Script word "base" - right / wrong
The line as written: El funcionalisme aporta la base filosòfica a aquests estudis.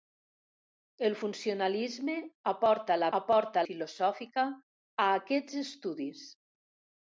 wrong